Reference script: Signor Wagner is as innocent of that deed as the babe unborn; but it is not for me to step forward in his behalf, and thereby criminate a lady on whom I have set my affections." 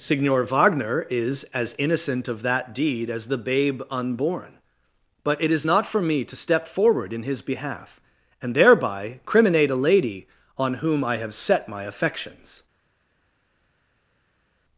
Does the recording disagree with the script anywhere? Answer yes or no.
no